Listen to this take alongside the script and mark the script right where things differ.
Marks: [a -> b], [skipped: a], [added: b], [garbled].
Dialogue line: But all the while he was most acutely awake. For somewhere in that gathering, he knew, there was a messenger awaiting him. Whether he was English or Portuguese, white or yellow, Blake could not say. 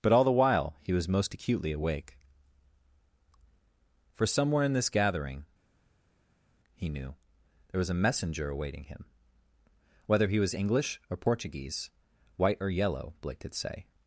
But all the while he was most acutely awake. For somewhere in [that -> this] gathering, he knew, there was a messenger awaiting him. Whether he was English or Portuguese, white or yellow, Blake could [skipped: not] say.